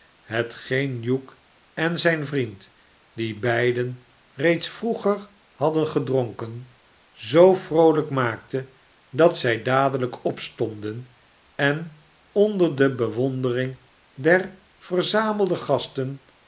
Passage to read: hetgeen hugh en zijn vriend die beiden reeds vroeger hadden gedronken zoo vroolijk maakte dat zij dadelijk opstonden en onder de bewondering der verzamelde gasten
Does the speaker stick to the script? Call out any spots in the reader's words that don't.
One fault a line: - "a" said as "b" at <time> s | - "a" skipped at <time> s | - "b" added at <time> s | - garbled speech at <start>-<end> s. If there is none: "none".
none